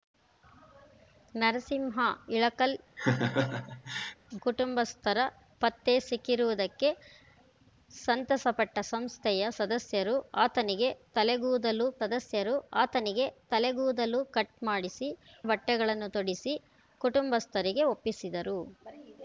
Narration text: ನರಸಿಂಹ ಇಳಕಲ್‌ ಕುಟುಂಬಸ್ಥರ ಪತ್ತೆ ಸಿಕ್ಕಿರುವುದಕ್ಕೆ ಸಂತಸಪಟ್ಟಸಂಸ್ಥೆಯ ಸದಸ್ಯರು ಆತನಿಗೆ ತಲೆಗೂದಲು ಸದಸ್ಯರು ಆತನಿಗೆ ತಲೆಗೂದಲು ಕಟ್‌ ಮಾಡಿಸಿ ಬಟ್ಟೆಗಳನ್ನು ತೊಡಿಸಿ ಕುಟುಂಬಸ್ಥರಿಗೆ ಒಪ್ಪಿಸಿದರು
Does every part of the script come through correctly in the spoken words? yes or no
yes